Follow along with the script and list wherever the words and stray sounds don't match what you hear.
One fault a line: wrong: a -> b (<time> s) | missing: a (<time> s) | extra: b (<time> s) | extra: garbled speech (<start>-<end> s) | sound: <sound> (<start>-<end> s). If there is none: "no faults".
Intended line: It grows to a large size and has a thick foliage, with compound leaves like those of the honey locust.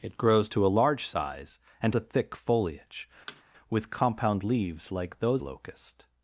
missing: has (2.0 s)
sound: thud (3.3-3.4 s)
missing: of the honey (5.4 s)